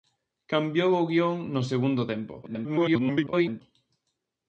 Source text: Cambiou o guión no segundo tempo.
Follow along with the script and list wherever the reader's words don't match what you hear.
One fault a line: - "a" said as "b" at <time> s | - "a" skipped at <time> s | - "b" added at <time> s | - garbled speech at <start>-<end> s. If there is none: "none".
- garbled speech at 2.4-3.6 s